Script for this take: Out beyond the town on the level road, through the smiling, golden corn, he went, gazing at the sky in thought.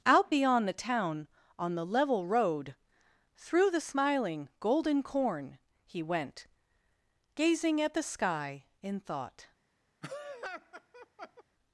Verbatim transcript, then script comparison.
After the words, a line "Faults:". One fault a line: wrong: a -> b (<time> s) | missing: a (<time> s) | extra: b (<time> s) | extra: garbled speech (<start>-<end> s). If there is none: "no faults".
Out beyond the town on the level road, through the smiling, golden corn, he went, gazing at the sky in thought.
Faults:
no faults